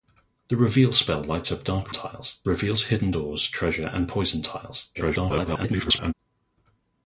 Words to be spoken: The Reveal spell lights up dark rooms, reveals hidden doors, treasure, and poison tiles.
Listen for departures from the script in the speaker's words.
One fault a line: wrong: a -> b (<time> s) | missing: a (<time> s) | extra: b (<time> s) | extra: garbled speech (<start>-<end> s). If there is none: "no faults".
wrong: rooms -> tiles (1.9 s)
extra: garbled speech (4.9-6.1 s)